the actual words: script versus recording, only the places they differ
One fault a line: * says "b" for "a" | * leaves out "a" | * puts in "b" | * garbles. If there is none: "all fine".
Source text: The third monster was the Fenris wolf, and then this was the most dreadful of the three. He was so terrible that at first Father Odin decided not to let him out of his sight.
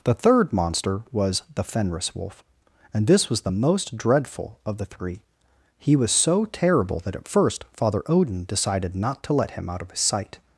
* leaves out "then"